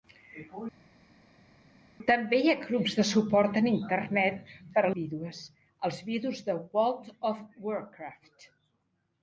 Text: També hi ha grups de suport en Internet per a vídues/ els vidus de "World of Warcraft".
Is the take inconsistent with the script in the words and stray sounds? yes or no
no